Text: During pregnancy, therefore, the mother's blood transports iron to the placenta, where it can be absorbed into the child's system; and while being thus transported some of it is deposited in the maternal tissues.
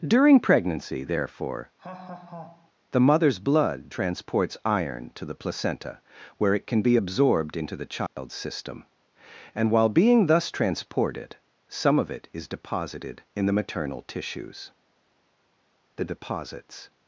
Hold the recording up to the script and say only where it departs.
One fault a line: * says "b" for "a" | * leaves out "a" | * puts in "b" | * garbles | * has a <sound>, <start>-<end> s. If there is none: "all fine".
* has a laugh, 1.8-2.7 s
* has a dropout, 8.1-8.2 s
* puts in "The deposits"